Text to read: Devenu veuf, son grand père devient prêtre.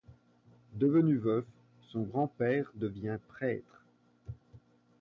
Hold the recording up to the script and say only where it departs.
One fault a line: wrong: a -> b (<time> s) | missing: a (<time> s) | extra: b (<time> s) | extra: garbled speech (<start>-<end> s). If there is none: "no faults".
no faults